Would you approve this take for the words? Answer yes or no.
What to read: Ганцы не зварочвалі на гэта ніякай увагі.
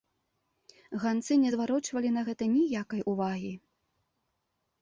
yes